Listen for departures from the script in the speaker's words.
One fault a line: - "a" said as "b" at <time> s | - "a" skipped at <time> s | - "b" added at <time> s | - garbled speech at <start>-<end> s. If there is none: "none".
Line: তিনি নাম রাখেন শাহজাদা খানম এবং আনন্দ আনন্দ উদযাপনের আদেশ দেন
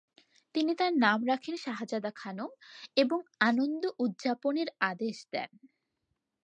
- "তার" added at 0.8 s
- "আনন্দ" skipped at 3.8 s